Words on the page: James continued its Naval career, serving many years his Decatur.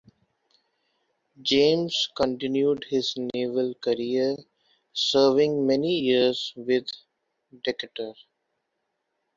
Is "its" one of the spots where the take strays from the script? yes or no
yes